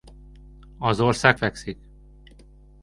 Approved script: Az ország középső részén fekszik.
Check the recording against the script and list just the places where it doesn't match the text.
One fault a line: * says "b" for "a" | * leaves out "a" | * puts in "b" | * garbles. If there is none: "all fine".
* leaves out "középső részén"